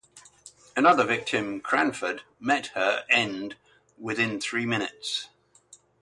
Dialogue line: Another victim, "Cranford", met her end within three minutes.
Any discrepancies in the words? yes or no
no